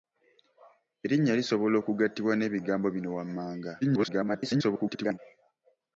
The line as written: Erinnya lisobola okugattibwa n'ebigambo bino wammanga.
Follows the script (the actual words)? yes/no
no